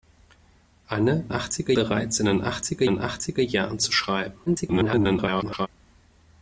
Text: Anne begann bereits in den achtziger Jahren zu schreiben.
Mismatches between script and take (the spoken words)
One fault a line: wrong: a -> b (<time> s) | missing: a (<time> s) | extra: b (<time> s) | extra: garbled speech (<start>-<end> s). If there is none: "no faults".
wrong: begann -> achtziger (1.3 s)
extra: den achtziger (2.8 s)
extra: garbled speech (4.5-5.7 s)